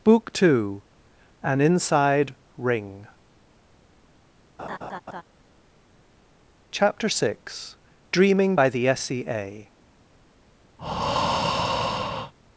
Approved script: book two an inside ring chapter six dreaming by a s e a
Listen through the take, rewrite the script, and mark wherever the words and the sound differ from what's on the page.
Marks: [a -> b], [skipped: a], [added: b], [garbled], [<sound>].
book two an inside ring [laugh] chapter six dreaming by [a -> the] s e a [breath]